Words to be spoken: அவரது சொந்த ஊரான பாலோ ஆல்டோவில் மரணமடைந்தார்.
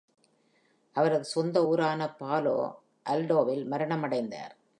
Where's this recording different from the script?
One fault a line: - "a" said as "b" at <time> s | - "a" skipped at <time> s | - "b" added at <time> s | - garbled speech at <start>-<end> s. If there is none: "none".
none